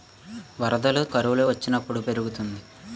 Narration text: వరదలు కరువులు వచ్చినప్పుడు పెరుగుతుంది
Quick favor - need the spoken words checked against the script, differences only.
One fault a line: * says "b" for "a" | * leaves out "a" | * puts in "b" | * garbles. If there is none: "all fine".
all fine